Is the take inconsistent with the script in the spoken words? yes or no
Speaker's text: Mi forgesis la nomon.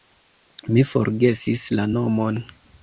no